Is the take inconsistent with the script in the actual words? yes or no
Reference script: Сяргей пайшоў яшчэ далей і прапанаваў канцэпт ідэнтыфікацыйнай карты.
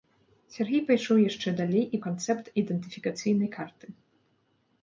yes